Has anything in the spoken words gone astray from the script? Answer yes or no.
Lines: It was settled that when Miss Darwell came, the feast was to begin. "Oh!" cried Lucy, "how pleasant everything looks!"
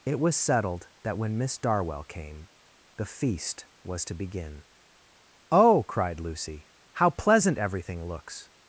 no